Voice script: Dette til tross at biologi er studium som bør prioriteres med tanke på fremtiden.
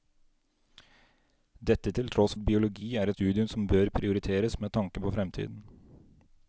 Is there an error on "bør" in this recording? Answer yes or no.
no